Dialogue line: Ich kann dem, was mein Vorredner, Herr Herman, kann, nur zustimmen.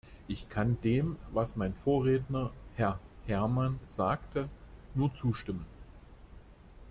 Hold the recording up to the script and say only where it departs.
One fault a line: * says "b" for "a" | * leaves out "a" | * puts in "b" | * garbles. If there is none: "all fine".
* says "sagte" for "kann"